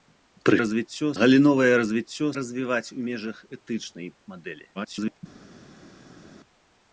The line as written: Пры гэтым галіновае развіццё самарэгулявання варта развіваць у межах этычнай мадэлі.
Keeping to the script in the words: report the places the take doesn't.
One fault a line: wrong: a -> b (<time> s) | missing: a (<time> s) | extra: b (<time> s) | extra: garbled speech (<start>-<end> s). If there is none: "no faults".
wrong: гэтым -> развіццё (0.6 s)
missing: самарэгулявання варта (2.3 s)
extra: garbled speech (4.7-5.2 s)